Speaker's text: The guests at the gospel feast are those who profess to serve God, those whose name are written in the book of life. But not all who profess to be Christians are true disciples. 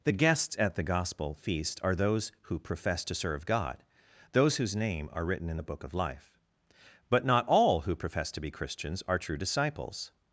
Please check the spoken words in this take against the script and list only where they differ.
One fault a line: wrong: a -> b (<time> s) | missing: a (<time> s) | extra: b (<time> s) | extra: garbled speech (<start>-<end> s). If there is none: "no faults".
no faults